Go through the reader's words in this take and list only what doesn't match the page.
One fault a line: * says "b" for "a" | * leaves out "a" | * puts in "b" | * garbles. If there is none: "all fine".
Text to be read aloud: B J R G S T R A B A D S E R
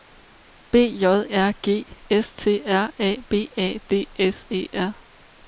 all fine